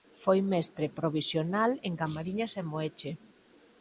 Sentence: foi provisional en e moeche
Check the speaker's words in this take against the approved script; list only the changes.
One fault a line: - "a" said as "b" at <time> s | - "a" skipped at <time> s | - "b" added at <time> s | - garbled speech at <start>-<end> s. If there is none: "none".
- "mestre" added at 0.5 s
- "camariñas" added at 2.0 s